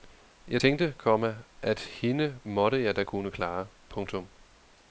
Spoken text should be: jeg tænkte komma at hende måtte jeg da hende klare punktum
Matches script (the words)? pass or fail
fail